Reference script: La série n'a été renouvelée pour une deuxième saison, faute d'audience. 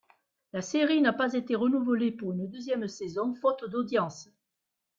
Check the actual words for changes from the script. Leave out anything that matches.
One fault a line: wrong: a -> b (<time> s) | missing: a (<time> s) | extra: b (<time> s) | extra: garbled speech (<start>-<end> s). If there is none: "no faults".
extra: pas (1.1 s)